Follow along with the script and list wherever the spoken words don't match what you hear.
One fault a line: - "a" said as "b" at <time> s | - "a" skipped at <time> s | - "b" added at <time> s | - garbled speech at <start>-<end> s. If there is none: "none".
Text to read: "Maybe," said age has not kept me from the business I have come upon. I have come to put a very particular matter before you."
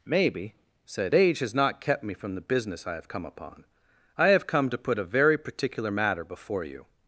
none